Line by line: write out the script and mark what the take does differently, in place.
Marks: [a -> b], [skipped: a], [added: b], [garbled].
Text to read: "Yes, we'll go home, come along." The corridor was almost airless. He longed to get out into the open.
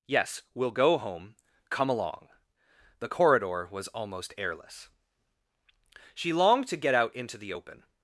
"Yes, we'll go home, come along." The corridor was almost airless. [He -> She] longed to get out into the open.